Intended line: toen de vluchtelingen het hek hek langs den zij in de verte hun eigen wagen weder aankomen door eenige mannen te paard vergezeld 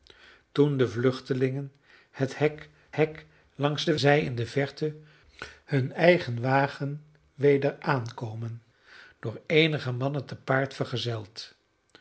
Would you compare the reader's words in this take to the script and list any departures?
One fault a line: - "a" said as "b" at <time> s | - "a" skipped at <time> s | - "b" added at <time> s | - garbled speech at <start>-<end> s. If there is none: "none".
none